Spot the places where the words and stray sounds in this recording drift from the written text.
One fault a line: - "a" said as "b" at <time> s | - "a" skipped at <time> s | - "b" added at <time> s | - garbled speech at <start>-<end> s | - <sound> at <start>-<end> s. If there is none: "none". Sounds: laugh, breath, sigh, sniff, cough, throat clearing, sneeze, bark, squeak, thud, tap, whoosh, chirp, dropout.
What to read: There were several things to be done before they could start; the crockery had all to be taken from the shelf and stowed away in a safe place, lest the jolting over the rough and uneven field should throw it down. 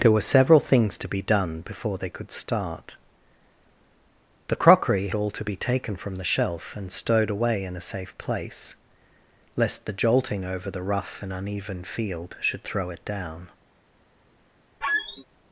- "had" skipped at 5.1 s
- squeak at 14.8-15.2 s